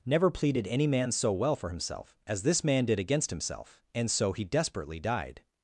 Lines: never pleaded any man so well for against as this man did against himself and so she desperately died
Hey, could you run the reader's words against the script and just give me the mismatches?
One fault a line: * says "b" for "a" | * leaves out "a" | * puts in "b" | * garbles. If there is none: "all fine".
* says "himself" for "against"
* says "he" for "she"